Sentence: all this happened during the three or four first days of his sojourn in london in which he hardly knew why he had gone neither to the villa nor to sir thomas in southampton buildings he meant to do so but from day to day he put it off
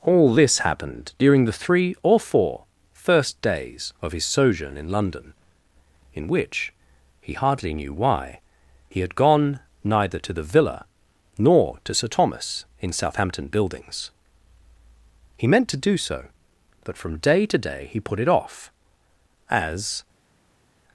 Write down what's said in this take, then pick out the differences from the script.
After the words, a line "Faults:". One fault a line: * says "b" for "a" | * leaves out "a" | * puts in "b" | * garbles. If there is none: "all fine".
all this happened during the three or four first days of his sojourn in london in which he hardly knew why he had gone neither to the villa nor to sir thomas in southampton buildings he meant to do so but from day to day he put it off as
Faults:
* puts in "as"